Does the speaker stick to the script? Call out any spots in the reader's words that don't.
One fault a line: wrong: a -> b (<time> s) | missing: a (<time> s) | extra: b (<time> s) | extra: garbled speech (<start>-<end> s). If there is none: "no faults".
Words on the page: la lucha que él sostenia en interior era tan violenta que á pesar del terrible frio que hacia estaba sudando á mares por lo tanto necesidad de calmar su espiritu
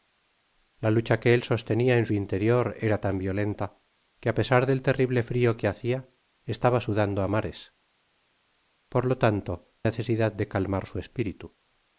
no faults